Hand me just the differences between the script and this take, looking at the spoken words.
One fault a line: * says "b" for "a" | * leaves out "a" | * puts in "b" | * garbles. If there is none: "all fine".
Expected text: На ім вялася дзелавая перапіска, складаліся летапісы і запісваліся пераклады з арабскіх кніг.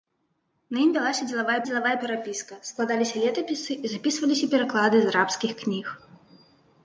* puts in "дзелавая"